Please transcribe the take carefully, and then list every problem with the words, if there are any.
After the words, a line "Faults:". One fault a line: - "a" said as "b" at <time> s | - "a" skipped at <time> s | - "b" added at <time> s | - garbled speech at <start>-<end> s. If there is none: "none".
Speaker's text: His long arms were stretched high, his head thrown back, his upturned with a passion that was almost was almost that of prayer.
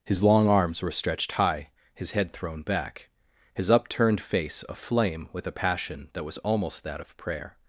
His long arms were stretched high, his head thrown back, his upturned face aflame with a passion that was almost that of prayer.
Faults:
- "face aflame" added at 4.2 s
- "was almost" skipped at 6.8 s